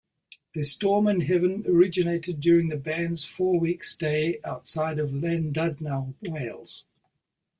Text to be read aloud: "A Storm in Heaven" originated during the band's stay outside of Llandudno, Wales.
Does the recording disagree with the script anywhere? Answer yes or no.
yes